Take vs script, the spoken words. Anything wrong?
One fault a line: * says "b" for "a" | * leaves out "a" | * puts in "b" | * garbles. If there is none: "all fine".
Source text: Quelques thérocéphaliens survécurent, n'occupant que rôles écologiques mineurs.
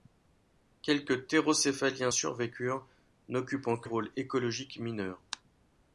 all fine